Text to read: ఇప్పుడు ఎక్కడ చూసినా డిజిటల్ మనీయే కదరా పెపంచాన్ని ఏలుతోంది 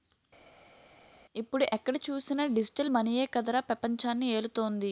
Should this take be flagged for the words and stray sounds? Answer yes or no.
no